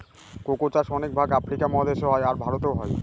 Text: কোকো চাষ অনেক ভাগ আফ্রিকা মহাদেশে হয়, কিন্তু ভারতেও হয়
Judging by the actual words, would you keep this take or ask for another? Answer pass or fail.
fail